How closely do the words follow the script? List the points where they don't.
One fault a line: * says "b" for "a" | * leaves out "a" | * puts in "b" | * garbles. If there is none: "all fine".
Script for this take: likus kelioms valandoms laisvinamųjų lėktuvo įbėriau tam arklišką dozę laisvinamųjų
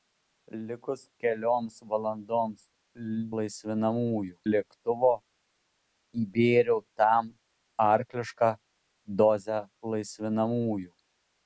all fine